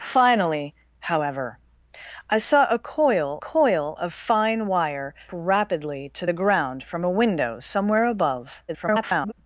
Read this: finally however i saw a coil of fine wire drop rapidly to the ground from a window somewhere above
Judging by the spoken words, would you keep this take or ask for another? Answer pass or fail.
fail